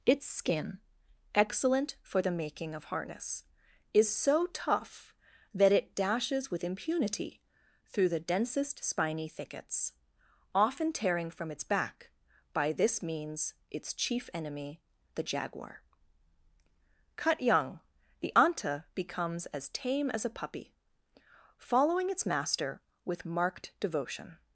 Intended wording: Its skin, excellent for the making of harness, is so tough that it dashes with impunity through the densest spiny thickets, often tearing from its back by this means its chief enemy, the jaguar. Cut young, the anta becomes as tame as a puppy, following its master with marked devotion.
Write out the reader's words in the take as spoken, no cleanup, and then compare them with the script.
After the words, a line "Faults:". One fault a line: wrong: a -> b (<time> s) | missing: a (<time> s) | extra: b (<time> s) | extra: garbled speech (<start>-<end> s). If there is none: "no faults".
Its skin, excellent for the making of harness, is so tough that it dashes with impunity through the densest spiny thickets, often tearing from its back by this means its chief enemy, the jaguar. Cut young, the anta becomes as tame as a puppy, following its master with marked devotion.
Faults:
no faults